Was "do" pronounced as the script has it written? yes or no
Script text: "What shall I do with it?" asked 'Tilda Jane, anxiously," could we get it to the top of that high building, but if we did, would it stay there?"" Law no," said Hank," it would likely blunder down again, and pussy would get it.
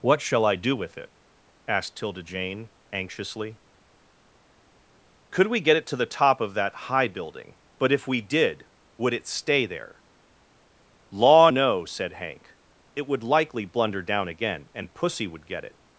yes